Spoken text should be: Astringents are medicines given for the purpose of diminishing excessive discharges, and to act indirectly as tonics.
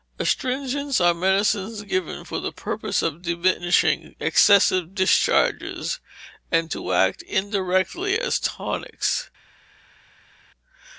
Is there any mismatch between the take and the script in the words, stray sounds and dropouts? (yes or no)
no